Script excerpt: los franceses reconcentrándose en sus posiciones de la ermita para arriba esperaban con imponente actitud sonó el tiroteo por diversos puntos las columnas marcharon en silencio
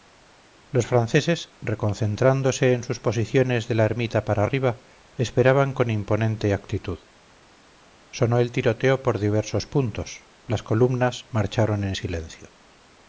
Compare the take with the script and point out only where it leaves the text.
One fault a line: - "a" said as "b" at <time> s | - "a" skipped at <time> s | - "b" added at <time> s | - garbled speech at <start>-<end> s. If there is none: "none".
none